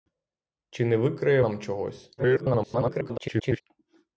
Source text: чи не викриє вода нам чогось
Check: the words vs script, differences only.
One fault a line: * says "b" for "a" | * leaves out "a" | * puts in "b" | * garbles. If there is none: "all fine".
* leaves out "вода"
* garbles